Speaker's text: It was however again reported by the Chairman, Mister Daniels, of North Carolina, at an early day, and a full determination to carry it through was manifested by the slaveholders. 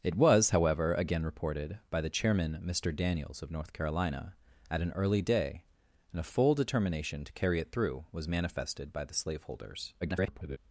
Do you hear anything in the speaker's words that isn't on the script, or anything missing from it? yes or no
yes